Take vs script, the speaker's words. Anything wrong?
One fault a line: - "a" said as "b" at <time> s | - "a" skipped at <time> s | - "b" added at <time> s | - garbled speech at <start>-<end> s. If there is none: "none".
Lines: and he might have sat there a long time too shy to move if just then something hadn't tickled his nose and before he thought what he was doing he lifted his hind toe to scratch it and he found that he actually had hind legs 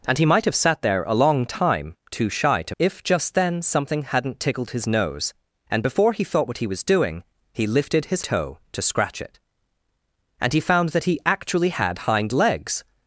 - "move" skipped at 2.8 s
- "hind" skipped at 8.2 s